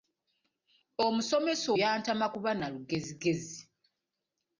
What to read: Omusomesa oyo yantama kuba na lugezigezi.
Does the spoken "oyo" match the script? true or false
false